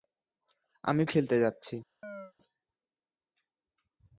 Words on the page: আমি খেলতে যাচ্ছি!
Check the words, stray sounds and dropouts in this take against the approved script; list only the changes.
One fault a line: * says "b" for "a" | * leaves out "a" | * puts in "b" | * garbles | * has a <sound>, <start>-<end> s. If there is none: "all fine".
* has a chirp, 2.0-2.3 s